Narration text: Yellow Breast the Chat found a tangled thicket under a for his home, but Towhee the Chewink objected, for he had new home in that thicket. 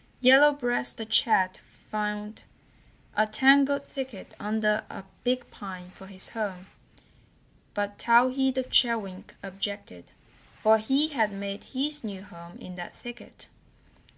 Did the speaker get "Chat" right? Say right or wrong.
right